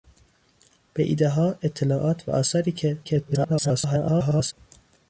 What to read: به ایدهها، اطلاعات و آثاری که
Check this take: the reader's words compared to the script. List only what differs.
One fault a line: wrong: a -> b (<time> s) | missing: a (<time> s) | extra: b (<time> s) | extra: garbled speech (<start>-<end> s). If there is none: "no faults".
extra: garbled speech (3.0-4.5 s)